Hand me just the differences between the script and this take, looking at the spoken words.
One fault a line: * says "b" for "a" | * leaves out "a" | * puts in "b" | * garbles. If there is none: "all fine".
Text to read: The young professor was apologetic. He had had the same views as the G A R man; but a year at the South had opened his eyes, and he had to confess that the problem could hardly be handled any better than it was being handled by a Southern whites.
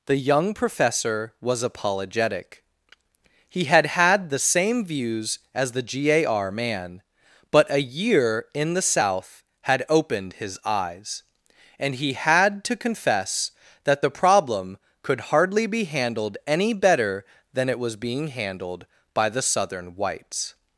* says "in" for "at"
* says "the" for "a"